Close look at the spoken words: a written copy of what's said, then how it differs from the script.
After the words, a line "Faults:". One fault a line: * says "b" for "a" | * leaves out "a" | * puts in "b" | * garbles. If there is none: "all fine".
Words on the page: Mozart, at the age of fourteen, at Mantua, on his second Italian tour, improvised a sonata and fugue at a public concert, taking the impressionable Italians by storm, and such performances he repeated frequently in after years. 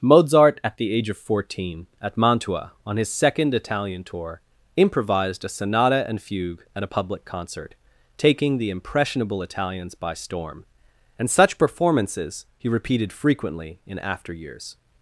Mozart, at the age of fourteen, at Mantua, on his second Italian tour, improvised a sonata and fugue at a public concert, taking the impressionable Italians by storm, and such performances he repeated frequently in after years.
Faults:
all fine